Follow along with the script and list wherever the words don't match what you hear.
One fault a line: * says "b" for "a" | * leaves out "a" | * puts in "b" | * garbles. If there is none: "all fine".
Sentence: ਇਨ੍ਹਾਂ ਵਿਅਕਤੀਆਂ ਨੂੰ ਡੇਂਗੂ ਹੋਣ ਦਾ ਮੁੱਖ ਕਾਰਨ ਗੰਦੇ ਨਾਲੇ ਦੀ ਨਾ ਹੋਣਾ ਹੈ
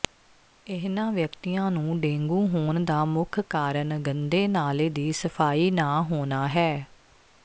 * puts in "ਸਫਾਈ"